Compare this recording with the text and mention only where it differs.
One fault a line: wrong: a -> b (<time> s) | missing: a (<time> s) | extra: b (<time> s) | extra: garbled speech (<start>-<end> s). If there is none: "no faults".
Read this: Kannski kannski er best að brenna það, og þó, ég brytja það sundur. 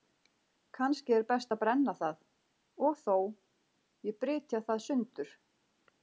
missing: kannski (1.1 s)